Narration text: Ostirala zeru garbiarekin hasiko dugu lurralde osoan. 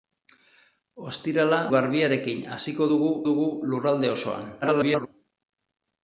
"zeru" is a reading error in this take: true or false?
true